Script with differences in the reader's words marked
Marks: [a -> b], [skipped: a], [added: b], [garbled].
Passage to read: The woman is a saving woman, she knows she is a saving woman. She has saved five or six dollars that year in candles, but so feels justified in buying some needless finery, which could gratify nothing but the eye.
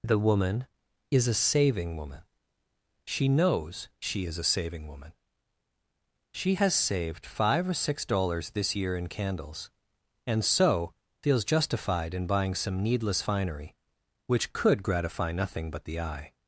The woman is a saving woman, she knows she is a saving woman. She has saved five or six dollars [that -> this] year in candles, [but -> and] so feels justified in buying some needless finery, which could gratify nothing but the eye.